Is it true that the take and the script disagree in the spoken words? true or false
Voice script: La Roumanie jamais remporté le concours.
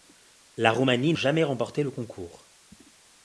false